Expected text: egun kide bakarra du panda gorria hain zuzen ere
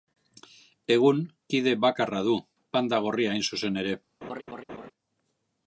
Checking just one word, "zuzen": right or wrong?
right